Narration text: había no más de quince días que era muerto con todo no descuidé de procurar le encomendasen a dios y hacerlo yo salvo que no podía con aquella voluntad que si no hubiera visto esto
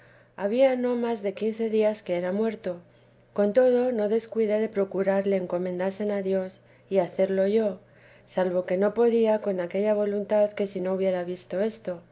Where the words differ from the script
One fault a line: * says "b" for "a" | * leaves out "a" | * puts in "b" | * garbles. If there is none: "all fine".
all fine